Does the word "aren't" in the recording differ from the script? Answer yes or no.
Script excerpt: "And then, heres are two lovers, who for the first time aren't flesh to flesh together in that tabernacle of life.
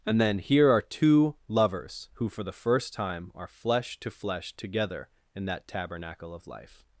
yes